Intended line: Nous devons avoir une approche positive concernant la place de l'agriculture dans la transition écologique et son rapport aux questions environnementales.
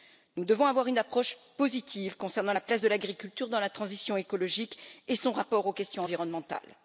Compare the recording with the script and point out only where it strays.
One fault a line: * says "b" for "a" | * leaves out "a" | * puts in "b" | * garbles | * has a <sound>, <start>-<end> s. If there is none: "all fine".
all fine